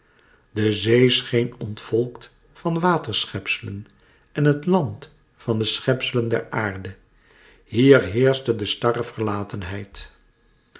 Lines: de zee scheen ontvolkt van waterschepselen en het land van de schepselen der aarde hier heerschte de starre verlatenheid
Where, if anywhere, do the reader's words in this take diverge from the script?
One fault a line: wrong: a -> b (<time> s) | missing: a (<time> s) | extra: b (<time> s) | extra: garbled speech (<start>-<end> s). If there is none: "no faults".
no faults